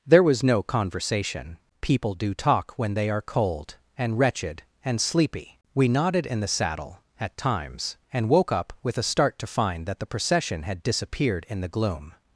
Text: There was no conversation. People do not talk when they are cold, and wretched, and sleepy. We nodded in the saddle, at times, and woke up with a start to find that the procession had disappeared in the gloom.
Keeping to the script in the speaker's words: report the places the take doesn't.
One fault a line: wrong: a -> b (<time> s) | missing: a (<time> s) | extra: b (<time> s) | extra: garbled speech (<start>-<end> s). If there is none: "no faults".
missing: not (2.3 s)